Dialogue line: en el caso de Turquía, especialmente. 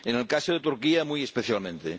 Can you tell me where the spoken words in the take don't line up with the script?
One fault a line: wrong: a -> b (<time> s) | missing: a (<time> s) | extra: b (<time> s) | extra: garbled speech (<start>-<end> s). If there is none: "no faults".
extra: muy (1.0 s)